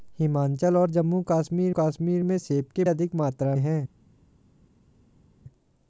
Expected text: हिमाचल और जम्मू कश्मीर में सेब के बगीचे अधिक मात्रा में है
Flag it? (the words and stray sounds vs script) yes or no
yes